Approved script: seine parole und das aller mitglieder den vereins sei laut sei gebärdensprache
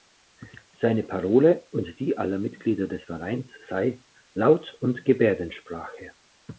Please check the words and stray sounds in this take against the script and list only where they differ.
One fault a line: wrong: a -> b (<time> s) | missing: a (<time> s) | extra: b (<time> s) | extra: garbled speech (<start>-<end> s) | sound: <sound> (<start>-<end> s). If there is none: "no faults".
wrong: das -> die (2.0 s)
wrong: den -> des (2.9 s)
wrong: sei -> und (4.8 s)